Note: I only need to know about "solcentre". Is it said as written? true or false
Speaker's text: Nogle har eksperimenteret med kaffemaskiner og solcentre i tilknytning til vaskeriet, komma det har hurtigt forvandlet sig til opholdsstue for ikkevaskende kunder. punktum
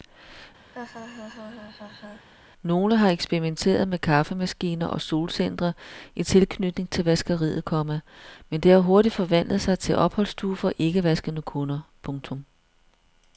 true